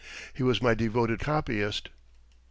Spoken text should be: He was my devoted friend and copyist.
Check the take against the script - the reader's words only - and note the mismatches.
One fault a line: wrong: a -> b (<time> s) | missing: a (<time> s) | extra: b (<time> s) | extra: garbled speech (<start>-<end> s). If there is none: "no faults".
missing: friend and (1.2 s)